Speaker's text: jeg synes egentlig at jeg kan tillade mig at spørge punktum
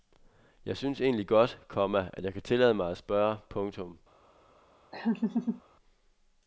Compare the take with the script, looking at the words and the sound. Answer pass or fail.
fail